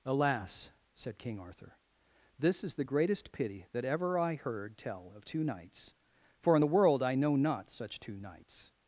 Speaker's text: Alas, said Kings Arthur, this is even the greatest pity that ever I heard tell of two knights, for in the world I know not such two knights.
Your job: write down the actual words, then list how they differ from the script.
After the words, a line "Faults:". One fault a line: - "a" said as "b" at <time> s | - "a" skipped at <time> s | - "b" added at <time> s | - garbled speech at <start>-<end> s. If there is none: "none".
Alas, said King Arthur, this is the greatest pity that ever I heard tell of two knights, for in the world I know not such two knights.
Faults:
- "Kings" said as "King" at 1.2 s
- "even" skipped at 2.7 s